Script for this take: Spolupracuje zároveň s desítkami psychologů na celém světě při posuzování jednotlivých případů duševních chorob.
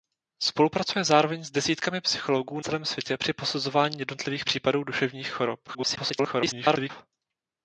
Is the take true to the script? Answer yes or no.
no